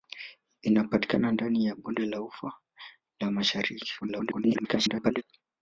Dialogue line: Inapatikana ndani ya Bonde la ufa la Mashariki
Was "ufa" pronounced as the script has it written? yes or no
yes